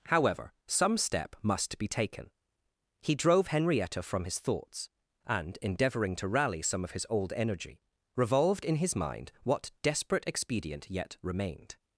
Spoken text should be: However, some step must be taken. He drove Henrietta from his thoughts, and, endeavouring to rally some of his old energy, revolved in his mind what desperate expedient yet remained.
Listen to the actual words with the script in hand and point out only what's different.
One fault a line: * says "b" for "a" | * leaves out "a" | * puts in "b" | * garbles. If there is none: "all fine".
all fine